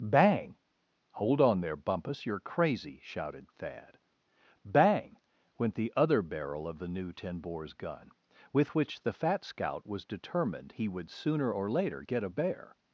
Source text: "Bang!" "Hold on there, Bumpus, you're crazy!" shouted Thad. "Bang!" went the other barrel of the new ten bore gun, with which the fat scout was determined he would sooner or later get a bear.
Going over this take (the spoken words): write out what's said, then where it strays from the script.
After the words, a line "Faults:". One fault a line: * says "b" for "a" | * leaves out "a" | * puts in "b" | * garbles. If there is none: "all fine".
"Bang!" "Hold on there, Bumpus, you're crazy!" shouted Thad. "Bang!" went the other barrel of the new ten bores gun, with which the fat scout was determined he would sooner or later get a bear.
Faults:
* says "bores" for "bore"